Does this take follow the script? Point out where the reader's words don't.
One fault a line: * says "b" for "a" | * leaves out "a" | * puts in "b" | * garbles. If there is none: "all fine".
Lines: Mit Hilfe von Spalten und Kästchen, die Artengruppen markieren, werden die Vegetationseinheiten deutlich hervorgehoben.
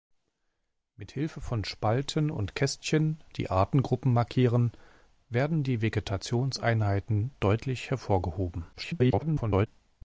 * garbles